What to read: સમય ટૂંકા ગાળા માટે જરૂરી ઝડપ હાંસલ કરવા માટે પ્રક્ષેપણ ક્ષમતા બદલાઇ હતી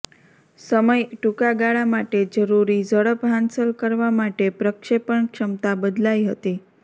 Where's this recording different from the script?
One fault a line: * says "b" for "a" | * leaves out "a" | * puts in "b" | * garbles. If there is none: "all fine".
all fine